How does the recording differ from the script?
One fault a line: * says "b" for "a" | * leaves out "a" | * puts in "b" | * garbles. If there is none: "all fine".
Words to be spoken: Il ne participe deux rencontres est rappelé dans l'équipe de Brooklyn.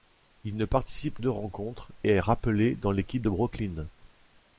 all fine